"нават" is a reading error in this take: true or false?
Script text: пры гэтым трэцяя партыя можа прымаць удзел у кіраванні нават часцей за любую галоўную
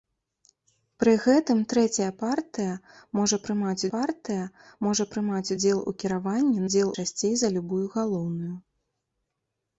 true